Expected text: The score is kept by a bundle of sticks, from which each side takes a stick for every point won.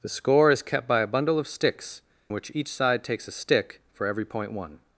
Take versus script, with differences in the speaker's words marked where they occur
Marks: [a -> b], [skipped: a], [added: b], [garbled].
The score is kept by a bundle of sticks, [skipped: from] which each side takes a stick for every point won.